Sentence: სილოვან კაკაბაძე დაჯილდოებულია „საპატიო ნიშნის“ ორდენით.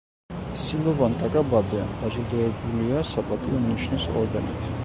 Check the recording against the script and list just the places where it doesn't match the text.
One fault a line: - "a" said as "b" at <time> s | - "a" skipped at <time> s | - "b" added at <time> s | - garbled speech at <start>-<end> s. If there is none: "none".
none